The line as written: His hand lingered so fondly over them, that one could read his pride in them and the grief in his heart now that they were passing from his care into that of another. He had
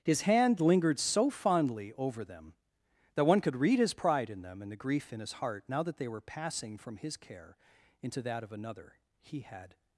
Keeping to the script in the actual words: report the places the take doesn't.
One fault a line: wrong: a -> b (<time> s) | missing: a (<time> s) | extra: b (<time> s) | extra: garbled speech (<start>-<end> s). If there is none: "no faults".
no faults